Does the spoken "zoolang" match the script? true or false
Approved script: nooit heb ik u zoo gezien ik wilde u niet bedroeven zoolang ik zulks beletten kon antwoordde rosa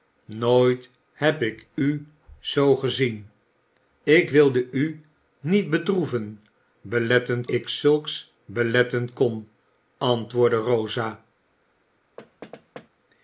false